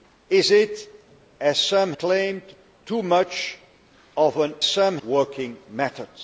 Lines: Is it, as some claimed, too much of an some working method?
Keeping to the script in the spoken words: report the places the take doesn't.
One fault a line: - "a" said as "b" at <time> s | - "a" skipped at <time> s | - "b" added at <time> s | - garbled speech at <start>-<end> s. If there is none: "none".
none